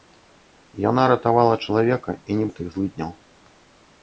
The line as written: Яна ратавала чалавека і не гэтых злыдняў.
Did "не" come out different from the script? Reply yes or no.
no